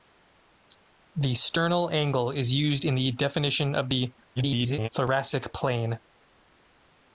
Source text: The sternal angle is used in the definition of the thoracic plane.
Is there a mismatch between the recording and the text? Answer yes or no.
yes